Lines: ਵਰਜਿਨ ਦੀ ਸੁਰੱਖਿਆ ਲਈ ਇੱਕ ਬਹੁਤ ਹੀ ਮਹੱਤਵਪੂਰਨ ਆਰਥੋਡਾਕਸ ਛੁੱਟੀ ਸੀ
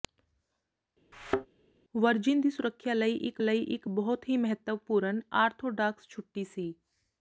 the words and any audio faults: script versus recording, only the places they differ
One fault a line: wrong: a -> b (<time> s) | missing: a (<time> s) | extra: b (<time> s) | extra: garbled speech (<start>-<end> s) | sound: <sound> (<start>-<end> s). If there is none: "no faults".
sound: thud (1.1-1.5 s)
extra: ਲਈ ਇੱਕ (3.4 s)